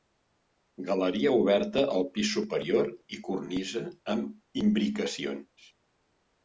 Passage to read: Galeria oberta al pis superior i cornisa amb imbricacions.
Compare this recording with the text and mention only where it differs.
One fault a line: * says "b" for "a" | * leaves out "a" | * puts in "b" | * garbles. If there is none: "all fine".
all fine